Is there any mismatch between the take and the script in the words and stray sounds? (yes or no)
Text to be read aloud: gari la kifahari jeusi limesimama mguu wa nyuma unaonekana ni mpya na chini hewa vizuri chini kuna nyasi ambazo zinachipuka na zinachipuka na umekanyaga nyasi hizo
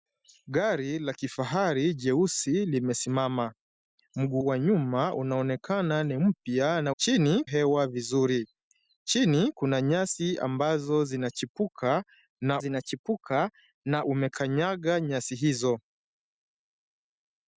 no